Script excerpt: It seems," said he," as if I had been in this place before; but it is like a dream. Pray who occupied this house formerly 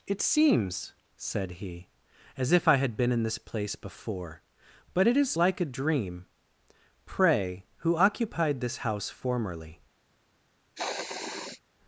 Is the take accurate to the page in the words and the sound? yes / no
no